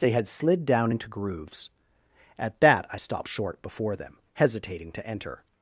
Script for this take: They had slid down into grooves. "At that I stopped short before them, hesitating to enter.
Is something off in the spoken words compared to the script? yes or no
no